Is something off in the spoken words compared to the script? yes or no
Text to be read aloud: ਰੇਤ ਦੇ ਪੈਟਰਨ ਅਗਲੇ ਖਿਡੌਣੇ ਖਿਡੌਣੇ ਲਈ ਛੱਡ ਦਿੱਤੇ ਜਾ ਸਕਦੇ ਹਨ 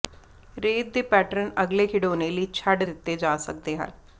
yes